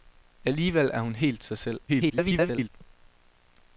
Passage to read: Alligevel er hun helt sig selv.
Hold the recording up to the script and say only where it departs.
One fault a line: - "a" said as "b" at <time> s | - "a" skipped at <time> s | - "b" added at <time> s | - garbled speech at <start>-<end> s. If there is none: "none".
- garbled speech at 1.9-2.7 s